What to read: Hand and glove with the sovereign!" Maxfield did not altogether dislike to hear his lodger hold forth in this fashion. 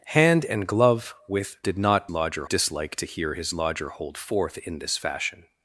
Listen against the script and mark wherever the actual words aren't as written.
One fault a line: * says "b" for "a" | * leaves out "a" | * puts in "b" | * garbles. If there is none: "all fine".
* leaves out "the sovereign Maxfield"
* says "lodger" for "altogether"